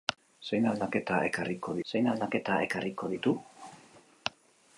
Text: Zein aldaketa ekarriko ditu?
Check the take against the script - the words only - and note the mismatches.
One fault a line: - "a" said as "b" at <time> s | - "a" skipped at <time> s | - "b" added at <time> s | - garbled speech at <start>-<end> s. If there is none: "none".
- "zein aldaketa ekarriko" added at 1.9 s